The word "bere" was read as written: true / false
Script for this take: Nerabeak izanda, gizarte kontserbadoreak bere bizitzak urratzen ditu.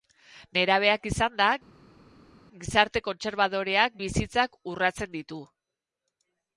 false